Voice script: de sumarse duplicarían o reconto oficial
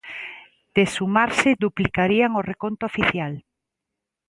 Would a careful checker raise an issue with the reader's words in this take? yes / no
no